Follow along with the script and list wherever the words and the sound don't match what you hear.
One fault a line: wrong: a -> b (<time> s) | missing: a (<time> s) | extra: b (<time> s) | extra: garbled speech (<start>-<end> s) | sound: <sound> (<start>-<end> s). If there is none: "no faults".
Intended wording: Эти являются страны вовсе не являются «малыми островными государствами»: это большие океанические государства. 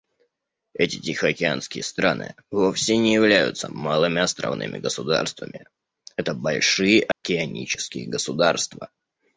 wrong: являются -> тихоокеанские (1.0 s)
sound: dropout (7.1-7.2 s)